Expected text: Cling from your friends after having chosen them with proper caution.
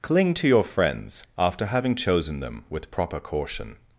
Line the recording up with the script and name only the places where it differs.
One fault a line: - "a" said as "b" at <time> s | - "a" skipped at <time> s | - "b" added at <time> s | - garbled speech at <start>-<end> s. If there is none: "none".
- "from" said as "to" at 0.3 s